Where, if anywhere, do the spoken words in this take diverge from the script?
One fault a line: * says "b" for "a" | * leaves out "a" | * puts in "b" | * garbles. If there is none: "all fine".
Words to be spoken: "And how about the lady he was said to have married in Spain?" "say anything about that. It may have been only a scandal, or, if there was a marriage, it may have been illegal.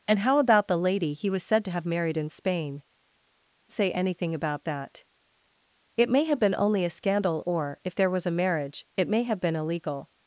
all fine